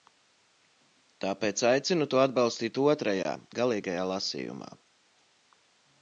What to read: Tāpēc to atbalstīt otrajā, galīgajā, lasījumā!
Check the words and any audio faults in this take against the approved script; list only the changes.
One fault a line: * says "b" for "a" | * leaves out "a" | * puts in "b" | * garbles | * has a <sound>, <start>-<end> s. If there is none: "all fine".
* puts in "aicinu"